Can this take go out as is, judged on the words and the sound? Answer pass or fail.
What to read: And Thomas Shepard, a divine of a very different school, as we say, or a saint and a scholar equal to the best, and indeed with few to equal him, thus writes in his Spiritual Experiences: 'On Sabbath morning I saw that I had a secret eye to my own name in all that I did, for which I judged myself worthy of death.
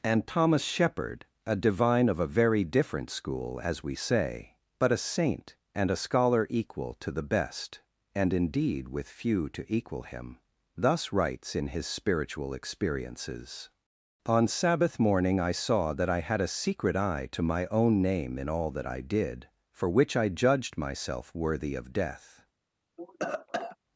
fail